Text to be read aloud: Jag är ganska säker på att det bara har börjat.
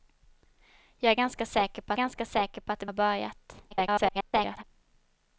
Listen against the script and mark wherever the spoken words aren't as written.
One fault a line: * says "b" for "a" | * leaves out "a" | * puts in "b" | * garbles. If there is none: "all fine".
* puts in "ganska säker på"
* leaves out "bara"
* garbles